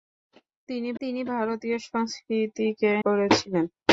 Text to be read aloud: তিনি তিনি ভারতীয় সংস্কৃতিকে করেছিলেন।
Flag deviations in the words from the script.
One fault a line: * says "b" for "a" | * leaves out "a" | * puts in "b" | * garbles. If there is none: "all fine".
all fine